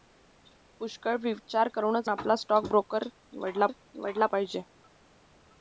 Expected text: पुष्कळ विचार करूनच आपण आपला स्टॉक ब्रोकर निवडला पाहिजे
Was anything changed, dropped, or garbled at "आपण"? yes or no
yes